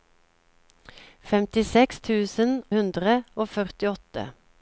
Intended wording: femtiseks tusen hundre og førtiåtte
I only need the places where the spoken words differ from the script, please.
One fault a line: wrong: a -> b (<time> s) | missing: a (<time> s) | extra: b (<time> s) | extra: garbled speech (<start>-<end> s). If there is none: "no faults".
no faults